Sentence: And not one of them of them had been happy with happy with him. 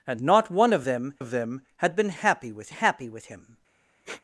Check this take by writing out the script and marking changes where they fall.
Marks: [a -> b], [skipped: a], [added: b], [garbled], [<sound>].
And not one of them of them had been happy with happy with him. [sniff]